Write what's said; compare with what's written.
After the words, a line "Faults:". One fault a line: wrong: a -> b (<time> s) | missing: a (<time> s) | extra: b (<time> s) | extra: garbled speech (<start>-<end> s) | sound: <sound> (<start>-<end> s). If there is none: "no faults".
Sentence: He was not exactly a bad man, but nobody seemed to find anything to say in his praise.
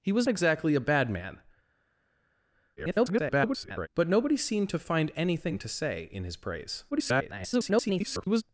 He was exactly a bad man, [garbled] but nobody seemed to find anything to say in his praise. [garbled]
Faults:
missing: not (0.3 s)
extra: garbled speech (2.8-3.9 s)
extra: garbled speech (6.9-8.4 s)